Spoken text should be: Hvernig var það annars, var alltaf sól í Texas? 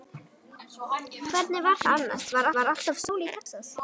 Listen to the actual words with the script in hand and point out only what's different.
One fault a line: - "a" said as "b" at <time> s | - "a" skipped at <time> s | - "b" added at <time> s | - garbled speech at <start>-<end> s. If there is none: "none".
- "var" added at 2.6 s